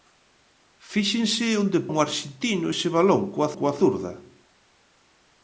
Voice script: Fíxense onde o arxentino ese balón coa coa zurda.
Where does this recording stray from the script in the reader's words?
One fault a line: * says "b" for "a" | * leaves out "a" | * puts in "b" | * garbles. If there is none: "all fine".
all fine